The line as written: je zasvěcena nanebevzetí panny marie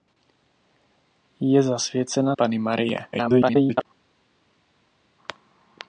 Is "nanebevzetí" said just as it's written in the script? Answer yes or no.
no